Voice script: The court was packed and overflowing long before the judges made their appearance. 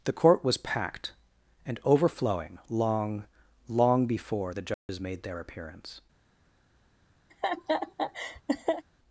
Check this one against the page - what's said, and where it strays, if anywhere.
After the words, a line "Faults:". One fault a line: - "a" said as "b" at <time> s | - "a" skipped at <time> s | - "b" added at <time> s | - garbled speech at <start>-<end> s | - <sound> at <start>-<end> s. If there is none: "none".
The court was packed and overflowing long long before the judges made their appearance.
Faults:
- "long" added at 3.7 s
- dropout at 4.7-4.9 s
- laugh at 7.3-8.8 s